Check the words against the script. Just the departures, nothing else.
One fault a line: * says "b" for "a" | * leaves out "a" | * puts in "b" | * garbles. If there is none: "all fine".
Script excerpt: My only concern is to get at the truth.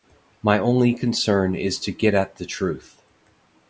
all fine